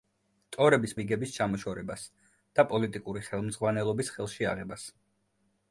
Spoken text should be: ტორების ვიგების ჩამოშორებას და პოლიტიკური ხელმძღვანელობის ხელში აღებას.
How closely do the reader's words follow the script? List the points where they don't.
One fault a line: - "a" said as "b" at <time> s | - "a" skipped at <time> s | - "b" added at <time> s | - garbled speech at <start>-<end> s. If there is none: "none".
none